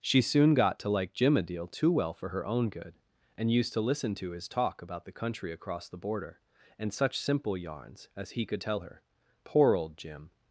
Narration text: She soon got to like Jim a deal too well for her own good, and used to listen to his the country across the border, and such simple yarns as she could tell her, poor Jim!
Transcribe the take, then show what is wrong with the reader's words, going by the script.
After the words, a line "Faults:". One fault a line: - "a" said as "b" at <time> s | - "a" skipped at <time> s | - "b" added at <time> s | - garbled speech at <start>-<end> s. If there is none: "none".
She soon got to like Jim a deal too well for her own good, and used to listen to his talk about the country across the border, and such simple yarns as he could tell her, poor old Jim!
Faults:
- "talk about" added at 4.5 s
- "she" said as "he" at 8.3 s
- "old" added at 9.7 s